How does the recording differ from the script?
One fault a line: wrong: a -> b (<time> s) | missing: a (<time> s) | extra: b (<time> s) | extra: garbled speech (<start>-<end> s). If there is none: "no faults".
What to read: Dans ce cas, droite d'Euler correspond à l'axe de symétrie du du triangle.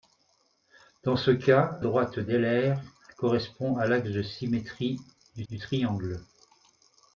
no faults